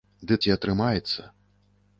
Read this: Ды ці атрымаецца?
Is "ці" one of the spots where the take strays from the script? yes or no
no